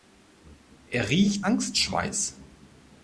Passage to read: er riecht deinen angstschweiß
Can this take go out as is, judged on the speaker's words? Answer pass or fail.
fail